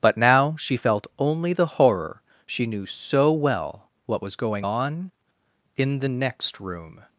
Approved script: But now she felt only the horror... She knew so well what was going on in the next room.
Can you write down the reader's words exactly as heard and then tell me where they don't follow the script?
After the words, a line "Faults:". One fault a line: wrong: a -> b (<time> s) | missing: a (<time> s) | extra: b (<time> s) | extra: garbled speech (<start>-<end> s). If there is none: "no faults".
But now she felt only the horror... She knew so well what was going on in the next room.
Faults:
no faults